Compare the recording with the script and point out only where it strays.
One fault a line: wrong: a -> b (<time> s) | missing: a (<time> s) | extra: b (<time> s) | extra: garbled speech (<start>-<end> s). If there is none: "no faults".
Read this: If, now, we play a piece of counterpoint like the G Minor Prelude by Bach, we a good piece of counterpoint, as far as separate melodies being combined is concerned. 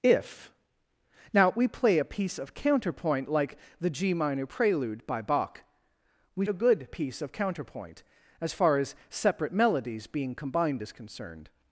no faults